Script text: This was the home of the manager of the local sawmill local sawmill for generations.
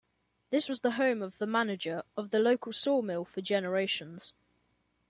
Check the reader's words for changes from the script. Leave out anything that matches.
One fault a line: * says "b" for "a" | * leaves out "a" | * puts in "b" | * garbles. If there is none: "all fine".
* leaves out "local sawmill"